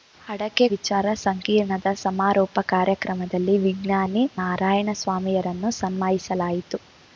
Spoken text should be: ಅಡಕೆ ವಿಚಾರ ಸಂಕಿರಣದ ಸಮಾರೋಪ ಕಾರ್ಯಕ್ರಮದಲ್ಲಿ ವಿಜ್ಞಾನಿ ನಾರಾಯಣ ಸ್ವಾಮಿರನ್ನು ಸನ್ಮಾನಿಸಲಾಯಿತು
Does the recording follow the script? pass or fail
pass